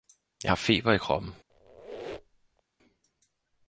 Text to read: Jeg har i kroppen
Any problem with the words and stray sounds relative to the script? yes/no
yes